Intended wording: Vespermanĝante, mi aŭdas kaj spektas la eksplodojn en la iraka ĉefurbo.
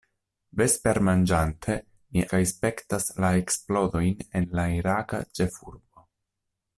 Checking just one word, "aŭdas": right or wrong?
wrong